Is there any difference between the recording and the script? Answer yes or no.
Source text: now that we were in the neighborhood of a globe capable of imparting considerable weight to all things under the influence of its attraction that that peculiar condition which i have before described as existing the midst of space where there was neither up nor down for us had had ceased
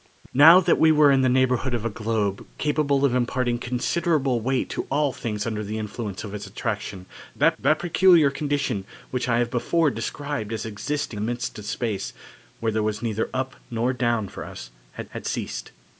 no